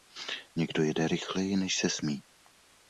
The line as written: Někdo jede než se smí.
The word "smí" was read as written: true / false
true